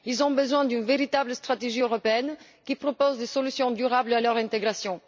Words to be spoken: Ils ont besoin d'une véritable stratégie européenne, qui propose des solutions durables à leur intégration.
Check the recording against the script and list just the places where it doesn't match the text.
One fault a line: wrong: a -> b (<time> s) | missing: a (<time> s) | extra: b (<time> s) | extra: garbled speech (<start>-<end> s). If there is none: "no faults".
no faults